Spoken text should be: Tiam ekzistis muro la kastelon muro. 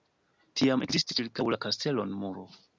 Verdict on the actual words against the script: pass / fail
fail